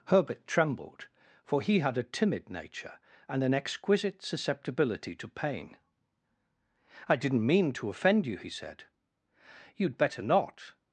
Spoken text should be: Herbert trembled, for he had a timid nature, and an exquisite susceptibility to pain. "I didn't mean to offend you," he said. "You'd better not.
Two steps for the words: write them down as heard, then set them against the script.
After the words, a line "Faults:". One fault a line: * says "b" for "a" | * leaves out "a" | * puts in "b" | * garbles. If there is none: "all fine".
Herbert trembled, for he had a timid nature, and an exquisite susceptibility to pain. "I didn't mean to offend you," he said. "You'd better not.
Faults:
all fine